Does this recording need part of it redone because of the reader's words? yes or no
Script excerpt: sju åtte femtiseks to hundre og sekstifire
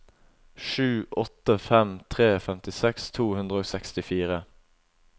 yes